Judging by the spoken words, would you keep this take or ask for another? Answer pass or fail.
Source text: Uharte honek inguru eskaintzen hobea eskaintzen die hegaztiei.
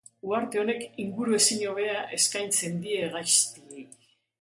fail